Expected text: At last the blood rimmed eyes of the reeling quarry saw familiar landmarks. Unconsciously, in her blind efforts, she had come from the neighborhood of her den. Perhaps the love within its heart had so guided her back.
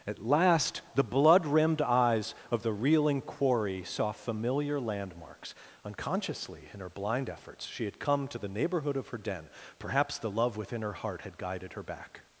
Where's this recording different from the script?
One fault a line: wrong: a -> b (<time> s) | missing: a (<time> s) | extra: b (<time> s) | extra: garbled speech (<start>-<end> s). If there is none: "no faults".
wrong: from -> to (8.3 s)
wrong: its -> her (10.8 s)
missing: so (11.4 s)